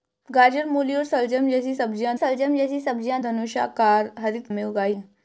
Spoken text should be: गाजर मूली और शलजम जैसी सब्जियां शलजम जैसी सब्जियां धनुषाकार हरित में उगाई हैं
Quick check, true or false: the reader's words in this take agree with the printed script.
true